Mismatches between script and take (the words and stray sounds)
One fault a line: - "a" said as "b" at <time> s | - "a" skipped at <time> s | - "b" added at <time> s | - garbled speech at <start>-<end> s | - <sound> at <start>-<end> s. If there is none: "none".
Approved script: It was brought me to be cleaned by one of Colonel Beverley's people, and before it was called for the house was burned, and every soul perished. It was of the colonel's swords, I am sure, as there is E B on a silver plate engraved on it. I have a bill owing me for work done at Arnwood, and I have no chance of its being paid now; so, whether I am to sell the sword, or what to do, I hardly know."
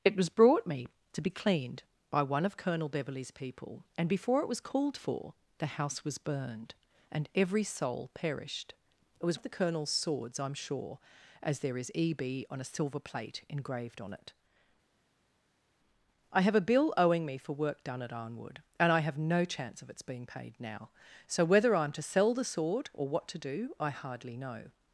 none